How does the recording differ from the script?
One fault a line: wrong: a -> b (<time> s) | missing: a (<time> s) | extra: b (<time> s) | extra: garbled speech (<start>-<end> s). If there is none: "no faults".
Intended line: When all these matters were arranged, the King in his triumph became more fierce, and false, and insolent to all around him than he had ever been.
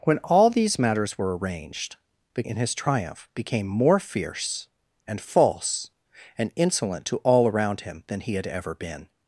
missing: King (2.4 s)